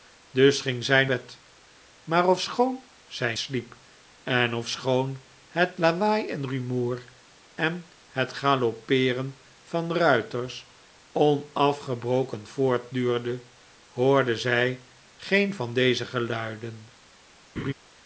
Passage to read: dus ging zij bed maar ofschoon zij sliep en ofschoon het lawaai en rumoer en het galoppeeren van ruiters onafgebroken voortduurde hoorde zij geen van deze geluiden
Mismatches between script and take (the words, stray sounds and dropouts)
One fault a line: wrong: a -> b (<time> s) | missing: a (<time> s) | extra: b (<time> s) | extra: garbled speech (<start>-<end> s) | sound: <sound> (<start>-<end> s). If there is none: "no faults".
sound: laugh (17.6-17.7 s)